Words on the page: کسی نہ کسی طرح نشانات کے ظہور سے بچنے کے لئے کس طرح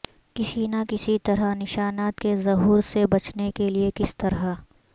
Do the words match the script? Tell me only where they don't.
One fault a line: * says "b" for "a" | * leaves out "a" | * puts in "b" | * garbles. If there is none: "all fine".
all fine